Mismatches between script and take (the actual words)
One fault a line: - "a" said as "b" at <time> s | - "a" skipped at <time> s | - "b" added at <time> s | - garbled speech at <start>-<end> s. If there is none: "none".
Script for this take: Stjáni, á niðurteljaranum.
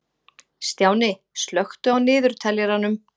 - "slökktu" added at 1.4 s